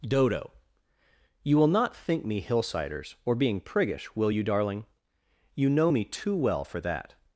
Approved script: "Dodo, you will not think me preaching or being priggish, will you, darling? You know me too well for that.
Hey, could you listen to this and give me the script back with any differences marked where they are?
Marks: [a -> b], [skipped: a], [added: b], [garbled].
"Dodo, you will not think me [preaching -> hillsiders] or being priggish, will you, darling? You know me too well for that.